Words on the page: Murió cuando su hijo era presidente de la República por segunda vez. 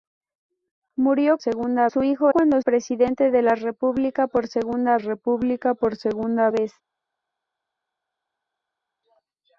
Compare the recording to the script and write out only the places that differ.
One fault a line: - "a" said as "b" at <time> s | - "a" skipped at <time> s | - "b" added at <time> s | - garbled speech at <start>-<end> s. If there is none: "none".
- "cuando" said as "segunda" at 1.4 s
- "era" said as "cuando" at 2.3 s
- "República por segunda" added at 4.9 s